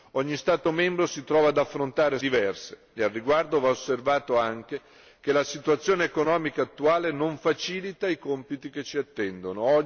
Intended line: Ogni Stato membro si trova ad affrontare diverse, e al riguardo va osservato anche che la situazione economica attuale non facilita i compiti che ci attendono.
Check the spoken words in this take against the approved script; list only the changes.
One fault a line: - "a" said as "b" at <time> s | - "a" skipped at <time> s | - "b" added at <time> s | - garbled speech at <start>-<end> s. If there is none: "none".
none